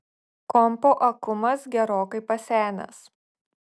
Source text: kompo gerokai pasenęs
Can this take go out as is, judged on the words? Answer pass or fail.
fail